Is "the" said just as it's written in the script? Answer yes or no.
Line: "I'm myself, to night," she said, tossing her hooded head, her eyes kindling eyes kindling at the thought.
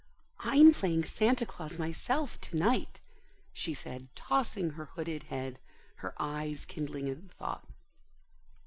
yes